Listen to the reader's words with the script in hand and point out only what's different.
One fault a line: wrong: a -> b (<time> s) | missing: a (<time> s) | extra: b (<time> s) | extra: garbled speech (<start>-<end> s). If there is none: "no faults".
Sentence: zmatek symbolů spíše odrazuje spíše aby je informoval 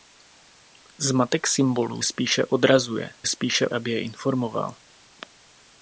no faults